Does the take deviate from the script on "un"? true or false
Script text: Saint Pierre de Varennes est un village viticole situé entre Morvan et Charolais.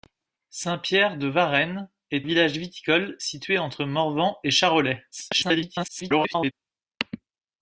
true